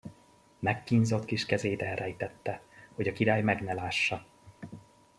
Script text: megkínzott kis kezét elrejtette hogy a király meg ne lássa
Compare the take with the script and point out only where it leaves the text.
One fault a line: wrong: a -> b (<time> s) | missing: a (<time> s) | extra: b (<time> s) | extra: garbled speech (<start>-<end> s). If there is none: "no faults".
no faults